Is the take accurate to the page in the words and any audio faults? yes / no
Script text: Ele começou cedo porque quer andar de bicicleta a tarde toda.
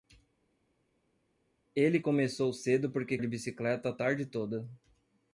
no